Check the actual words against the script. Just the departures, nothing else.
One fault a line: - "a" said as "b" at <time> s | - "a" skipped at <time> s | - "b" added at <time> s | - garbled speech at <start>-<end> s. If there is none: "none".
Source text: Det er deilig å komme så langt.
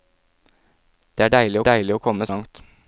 - "deilig" added at 1.7 s
- "så" skipped at 2.3 s